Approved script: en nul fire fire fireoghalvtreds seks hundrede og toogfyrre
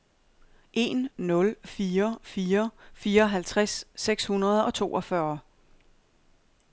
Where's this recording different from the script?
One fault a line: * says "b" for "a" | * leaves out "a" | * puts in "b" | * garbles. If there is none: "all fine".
all fine